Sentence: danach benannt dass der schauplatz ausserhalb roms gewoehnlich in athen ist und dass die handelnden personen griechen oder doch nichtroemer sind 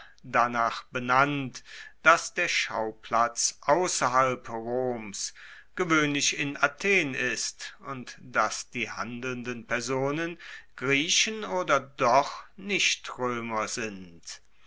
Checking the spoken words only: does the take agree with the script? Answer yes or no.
yes